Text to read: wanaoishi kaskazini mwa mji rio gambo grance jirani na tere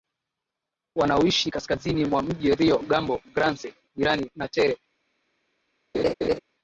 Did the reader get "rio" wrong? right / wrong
right